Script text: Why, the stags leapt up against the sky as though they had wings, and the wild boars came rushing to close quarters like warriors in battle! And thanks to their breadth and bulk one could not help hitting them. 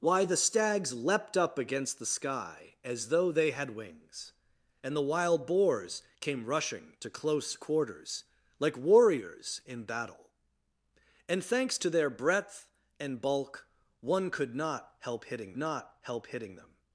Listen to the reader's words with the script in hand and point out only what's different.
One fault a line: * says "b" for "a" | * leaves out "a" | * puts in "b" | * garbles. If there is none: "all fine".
* puts in "not help hitting"